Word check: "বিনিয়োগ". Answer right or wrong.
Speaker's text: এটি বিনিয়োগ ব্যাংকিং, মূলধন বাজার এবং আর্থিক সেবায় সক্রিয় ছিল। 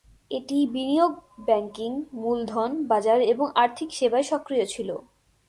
right